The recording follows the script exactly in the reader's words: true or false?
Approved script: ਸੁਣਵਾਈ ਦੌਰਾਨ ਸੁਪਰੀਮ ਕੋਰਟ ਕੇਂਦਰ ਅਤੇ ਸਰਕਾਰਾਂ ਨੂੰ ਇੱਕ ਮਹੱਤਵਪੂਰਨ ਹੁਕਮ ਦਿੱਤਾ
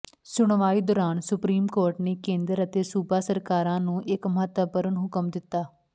false